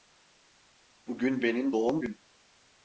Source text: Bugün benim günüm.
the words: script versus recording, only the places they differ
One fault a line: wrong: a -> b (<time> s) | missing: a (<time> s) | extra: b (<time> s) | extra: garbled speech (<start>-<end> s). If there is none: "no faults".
extra: doğum (1.7 s)